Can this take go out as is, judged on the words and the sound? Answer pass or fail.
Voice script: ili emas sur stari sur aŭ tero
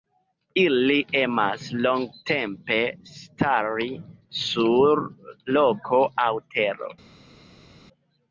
fail